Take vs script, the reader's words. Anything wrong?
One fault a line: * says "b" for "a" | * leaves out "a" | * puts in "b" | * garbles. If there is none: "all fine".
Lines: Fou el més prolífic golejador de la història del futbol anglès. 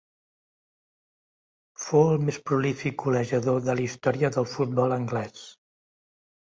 all fine